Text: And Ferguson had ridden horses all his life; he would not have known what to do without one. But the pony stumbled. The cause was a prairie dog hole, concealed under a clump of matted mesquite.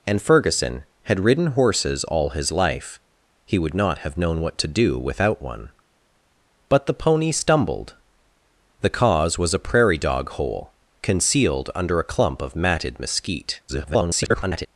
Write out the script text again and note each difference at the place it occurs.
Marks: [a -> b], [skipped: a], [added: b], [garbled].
And Ferguson had ridden horses all his life; he would not have known what to do without one. But the pony stumbled. The cause was a prairie dog hole, concealed under a clump of matted mesquite. [garbled]